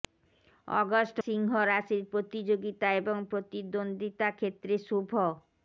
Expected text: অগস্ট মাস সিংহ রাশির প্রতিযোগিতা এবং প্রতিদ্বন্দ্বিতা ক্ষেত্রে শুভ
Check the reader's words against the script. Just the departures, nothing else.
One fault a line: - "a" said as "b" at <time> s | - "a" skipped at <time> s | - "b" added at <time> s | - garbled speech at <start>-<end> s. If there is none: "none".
- "মাস" skipped at 1.2 s